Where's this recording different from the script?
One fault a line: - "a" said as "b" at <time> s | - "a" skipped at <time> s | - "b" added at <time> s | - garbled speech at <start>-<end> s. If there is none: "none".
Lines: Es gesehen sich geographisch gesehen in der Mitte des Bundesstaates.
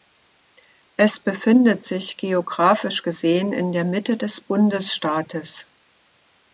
- "gesehen" said as "befindet" at 1.2 s